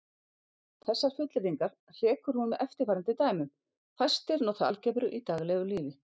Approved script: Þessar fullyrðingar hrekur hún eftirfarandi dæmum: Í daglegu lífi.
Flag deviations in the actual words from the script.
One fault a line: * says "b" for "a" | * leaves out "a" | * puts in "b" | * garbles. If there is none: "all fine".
* puts in "með"
* puts in "Fæstir nota algebru"